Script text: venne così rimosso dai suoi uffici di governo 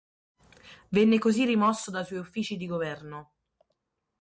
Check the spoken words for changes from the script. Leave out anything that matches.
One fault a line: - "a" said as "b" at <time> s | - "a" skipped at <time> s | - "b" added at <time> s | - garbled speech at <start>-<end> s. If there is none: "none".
none